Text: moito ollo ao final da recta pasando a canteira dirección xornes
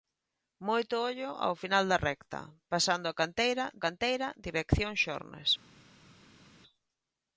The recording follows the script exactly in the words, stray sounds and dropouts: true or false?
false